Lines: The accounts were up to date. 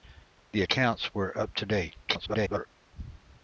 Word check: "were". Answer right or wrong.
right